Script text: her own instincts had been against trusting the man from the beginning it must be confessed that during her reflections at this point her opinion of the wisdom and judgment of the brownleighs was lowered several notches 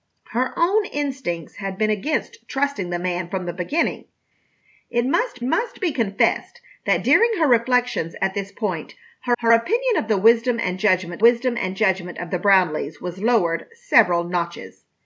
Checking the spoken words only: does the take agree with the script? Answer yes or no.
no